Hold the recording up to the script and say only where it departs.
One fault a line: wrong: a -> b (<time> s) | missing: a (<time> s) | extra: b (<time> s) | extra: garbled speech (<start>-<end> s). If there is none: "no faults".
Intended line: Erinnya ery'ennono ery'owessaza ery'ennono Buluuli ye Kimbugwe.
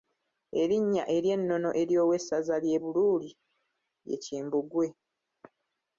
wrong: ery'ennono -> ly'e (2.6 s)